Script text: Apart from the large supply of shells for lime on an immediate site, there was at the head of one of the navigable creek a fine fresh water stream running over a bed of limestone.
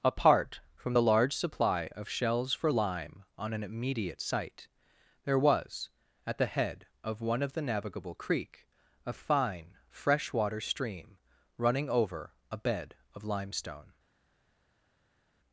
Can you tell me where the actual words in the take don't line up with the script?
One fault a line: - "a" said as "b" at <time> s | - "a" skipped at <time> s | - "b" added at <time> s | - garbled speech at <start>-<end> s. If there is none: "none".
none